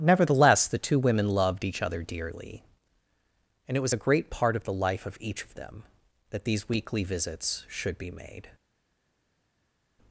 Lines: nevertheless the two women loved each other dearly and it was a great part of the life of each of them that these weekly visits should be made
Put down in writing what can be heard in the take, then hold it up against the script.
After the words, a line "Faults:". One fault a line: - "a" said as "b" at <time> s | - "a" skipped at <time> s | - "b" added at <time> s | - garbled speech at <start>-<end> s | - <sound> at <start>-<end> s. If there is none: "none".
nevertheless the two women loved each other dearly and it was a great part of the life of each of them that these weekly visits should be made
Faults:
none